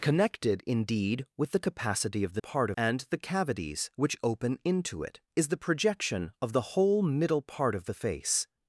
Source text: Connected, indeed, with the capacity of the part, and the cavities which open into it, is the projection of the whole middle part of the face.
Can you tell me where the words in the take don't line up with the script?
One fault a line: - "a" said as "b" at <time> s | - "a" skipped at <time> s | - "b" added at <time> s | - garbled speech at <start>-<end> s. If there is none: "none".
none